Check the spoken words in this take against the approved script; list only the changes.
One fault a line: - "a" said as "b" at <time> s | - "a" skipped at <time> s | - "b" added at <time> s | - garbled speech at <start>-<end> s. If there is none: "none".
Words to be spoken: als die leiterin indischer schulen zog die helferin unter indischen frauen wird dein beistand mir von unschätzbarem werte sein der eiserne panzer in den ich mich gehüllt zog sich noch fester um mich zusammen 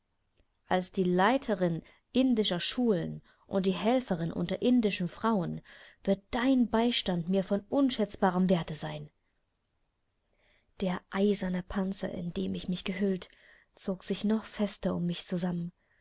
- "zog" said as "und" at 3.5 s